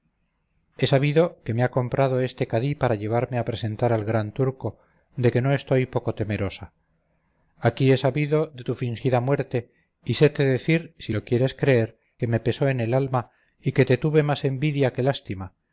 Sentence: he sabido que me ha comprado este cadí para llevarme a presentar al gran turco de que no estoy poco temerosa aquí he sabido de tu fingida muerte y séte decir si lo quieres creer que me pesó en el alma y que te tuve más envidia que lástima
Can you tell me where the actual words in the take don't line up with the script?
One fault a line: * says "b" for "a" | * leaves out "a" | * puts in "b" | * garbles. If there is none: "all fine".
all fine